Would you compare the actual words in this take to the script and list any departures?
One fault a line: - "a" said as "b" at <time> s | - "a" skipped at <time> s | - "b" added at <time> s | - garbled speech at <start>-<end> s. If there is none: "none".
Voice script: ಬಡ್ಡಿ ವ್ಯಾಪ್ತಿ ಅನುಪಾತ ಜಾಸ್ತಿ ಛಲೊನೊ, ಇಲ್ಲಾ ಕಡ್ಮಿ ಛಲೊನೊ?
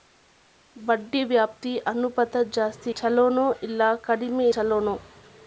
none